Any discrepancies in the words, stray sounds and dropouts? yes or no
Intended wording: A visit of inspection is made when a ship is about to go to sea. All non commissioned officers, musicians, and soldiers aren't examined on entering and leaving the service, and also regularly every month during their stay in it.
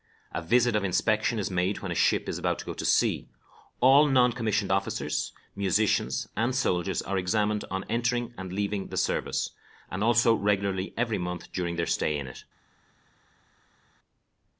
yes